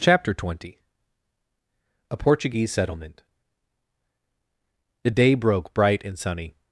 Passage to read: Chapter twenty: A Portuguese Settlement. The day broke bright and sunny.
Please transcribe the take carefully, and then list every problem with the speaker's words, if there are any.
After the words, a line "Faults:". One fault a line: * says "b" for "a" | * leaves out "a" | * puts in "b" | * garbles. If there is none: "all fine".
Chapter twenty: A Portuguese Settlement. The day broke bright and sunny.
Faults:
all fine